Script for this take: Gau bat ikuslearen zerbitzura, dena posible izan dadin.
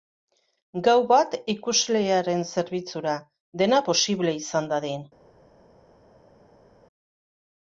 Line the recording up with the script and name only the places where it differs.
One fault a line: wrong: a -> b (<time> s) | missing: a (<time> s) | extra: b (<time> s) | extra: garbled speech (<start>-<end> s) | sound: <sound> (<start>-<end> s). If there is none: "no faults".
no faults